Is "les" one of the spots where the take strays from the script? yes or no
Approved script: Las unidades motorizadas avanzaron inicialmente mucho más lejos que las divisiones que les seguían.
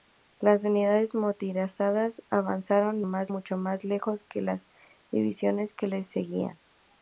no